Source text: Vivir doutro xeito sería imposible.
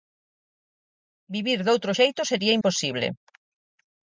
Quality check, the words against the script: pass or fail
pass